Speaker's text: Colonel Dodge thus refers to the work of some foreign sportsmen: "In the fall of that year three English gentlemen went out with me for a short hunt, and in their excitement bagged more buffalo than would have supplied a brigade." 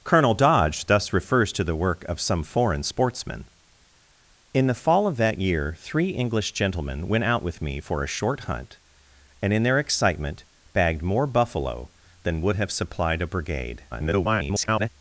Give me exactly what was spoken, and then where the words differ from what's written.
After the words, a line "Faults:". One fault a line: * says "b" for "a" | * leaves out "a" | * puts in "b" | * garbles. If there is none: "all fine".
Colonel Dodge thus refers to the work of some foreign sportsmen: "In the fall of that year three English gentlemen went out with me for a short hunt, and in their excitement bagged more buffalo than would have supplied a brigade." [garbled]
Faults:
* garbles